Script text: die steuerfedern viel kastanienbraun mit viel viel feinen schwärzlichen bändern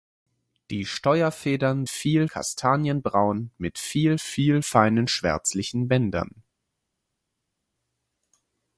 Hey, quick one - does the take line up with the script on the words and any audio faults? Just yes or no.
yes